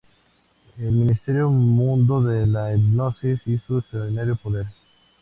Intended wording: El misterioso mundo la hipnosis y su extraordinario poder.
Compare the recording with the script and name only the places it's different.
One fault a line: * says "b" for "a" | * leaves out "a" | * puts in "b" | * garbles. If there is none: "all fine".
* puts in "de"